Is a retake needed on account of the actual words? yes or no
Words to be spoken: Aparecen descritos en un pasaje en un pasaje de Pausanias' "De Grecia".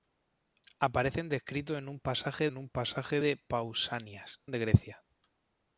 no